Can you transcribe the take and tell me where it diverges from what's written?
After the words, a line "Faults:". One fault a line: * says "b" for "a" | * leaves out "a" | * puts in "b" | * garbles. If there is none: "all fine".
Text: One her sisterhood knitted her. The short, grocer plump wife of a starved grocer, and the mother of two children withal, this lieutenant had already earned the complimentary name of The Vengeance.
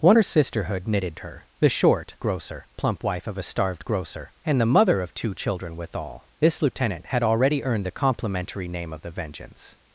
One her sisterhood knitted her. The short, grocer plump wife of a starved grocer, and the mother of two children withal, this lieutenant had already earned the complimentary name of The Vengeance.
Faults:
all fine